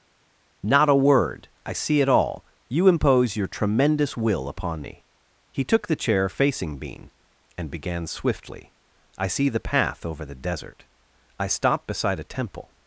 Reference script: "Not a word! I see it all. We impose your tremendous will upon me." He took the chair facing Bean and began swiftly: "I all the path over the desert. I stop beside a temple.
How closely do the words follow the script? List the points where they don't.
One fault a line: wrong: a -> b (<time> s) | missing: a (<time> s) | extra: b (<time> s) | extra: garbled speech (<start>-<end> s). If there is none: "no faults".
wrong: We -> You (2.7 s)
wrong: all -> see (9.3 s)